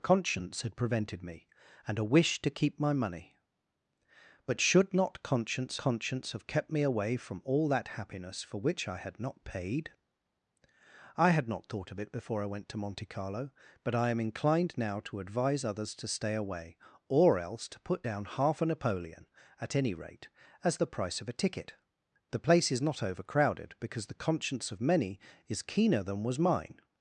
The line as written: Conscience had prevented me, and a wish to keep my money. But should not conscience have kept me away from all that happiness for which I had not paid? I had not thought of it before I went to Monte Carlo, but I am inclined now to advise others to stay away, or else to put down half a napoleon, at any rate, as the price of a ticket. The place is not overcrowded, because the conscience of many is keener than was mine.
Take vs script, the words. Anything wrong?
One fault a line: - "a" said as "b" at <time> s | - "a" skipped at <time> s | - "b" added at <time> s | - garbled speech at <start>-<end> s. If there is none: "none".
- "conscience" added at 5.8 s